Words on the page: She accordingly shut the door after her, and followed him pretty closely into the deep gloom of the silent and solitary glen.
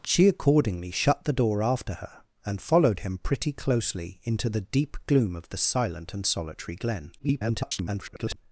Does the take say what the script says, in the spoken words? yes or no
no